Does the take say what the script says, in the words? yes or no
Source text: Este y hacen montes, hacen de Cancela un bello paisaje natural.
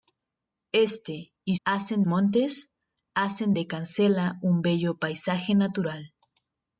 yes